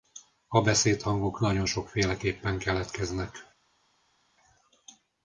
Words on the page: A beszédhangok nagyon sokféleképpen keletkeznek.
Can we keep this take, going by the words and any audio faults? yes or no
yes